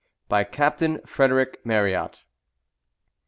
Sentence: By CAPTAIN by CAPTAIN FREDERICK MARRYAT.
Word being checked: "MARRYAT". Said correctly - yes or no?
yes